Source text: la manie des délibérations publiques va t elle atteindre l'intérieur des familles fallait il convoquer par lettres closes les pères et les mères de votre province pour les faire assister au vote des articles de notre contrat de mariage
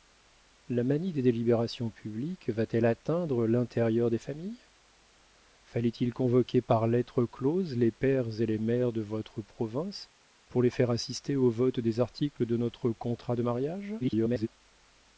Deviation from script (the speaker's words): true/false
true